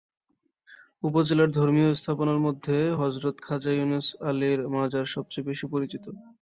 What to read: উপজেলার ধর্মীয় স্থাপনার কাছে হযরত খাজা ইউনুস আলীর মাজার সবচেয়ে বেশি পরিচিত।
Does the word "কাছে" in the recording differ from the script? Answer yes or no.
yes